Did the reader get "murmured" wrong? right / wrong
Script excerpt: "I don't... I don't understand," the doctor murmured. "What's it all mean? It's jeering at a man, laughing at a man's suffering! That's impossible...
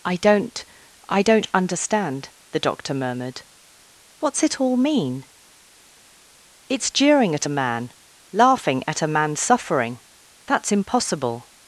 right